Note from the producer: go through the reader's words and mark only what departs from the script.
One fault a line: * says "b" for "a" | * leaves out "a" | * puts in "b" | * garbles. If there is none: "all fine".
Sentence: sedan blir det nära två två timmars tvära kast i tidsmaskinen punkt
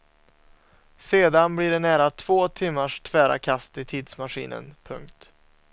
* leaves out "två"